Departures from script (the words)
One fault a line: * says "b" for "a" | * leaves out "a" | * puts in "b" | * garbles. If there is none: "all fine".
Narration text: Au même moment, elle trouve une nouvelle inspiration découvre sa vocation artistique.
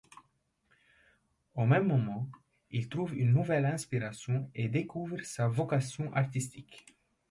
* says "il" for "elle"
* puts in "et"